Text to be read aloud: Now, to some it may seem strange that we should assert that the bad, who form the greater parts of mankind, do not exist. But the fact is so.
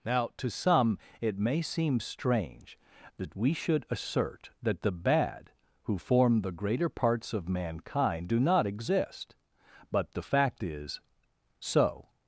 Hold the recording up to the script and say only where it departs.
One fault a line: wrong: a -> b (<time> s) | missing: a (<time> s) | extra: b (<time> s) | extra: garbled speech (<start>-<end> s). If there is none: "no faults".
no faults